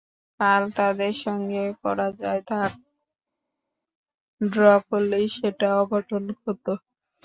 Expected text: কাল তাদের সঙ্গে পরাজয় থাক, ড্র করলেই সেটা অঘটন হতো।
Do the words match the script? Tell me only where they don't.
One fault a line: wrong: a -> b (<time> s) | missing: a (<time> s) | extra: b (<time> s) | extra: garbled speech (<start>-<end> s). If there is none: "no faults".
no faults